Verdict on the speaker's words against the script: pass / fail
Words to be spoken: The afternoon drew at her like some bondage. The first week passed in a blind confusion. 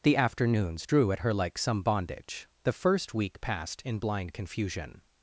fail